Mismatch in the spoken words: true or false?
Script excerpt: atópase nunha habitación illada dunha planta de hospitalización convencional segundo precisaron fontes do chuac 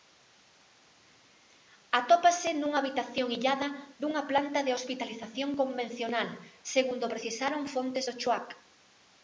false